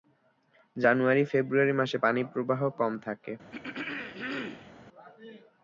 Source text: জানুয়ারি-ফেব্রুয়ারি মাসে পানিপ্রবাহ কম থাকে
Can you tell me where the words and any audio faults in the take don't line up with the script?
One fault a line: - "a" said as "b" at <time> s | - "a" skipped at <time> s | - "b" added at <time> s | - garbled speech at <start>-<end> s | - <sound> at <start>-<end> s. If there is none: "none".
- throat clearing at 3.5-4.7 s